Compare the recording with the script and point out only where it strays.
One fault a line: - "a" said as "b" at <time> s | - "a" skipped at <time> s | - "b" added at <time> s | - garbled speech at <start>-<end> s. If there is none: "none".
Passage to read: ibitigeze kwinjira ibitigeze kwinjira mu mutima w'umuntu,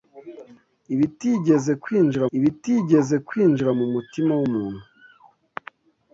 none